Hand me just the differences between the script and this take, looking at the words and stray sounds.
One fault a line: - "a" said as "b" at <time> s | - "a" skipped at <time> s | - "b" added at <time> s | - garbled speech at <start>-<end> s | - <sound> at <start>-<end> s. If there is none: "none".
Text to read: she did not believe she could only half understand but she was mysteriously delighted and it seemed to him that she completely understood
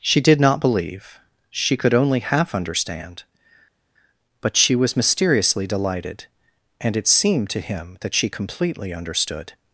none